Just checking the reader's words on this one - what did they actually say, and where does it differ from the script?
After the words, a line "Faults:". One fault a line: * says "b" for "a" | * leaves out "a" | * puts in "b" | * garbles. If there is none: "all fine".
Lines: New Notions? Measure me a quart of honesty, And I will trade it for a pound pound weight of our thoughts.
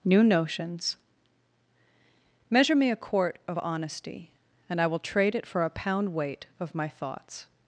New Notions? Measure me a quart of honesty, And I will trade it for a pound weight of my thoughts.
Faults:
* leaves out "pound"
* says "my" for "our"